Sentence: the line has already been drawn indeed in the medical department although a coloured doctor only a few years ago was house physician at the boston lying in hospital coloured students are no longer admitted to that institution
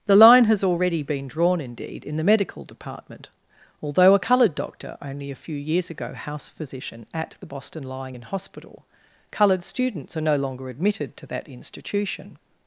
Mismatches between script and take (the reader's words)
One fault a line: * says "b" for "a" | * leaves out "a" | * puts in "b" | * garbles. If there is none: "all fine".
* leaves out "was"